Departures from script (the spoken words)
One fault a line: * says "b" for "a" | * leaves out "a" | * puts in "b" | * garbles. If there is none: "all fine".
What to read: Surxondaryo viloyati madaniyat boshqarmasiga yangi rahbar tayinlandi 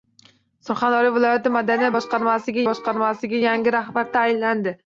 * puts in "boshqarmasiga"